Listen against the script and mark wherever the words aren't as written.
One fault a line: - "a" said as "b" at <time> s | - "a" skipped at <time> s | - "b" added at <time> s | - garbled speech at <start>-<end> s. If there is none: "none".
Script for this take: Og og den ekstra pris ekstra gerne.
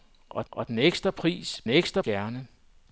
none